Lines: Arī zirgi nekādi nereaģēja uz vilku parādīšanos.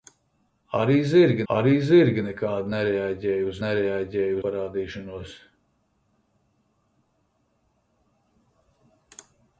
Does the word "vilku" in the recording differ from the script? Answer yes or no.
yes